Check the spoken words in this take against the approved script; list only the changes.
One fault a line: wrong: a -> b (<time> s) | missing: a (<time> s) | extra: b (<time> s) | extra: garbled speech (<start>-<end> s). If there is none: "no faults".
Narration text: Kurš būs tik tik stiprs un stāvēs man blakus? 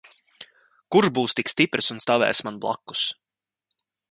missing: tik (1.5 s)